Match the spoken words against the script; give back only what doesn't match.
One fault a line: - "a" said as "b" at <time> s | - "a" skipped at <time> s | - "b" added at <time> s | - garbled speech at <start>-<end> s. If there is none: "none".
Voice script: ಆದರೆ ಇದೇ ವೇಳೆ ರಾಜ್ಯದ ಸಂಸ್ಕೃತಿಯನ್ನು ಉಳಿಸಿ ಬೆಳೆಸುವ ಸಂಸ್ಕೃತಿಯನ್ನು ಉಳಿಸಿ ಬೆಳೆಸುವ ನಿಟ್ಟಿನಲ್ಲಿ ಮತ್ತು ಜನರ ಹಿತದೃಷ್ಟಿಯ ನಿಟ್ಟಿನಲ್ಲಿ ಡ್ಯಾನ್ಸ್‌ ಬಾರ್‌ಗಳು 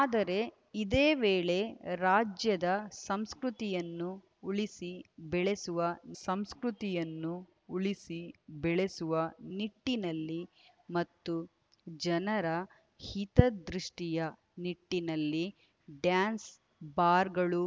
none